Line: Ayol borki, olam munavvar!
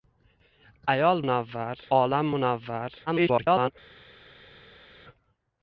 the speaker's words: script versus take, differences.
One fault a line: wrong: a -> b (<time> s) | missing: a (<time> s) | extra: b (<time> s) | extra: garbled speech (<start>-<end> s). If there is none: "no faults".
wrong: borki -> munavvar (1.2 s)
extra: garbled speech (3.1-3.7 s)